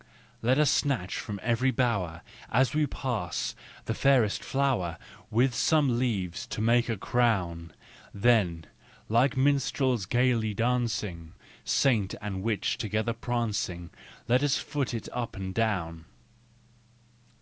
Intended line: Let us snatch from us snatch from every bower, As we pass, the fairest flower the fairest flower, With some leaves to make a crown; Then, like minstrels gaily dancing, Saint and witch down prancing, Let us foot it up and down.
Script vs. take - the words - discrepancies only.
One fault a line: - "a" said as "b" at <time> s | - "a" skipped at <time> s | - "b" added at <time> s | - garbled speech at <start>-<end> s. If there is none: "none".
- "us snatch from" skipped at 1.4 s
- "the fairest flower" skipped at 5.0 s
- "down" said as "together" at 12.8 s